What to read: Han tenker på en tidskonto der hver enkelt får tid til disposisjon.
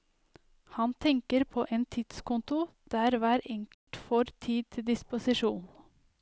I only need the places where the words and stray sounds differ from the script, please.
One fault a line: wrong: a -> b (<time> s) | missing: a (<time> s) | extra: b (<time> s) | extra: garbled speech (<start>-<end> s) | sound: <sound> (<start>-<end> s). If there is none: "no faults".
sound: dropout (3.7-3.9 s)